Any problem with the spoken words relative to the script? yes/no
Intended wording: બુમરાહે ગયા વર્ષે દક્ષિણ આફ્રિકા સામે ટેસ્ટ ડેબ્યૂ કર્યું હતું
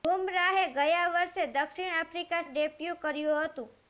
yes